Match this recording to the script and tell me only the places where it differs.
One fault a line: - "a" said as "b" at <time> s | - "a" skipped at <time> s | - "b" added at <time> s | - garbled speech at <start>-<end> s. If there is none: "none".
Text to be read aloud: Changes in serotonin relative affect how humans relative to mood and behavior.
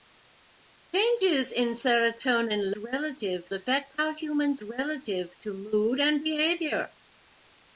none